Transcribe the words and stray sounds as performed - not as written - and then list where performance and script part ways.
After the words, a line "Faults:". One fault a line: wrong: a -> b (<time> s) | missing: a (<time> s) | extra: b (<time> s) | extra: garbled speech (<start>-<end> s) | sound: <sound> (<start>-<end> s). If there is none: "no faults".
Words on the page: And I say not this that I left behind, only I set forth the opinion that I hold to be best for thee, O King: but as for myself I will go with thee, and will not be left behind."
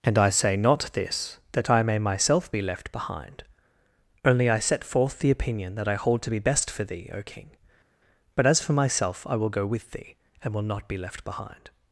And I say not this that I may myself be left behind, only I set forth the opinion that I hold to be best for thee, O King: but as for myself I will go with thee, and will not be left behind."
Faults:
extra: may myself be (1.8 s)